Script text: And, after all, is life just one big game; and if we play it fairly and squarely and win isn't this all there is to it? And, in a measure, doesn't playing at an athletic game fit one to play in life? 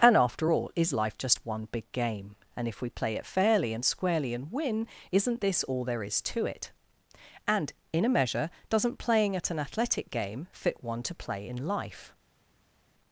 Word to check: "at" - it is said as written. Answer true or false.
true